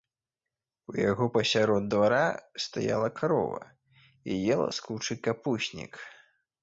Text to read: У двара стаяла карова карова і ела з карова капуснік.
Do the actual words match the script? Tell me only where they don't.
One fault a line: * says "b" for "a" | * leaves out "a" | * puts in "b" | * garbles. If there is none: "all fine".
* puts in "яго пасярод"
* leaves out "карова"
* says "кучы" for "карова"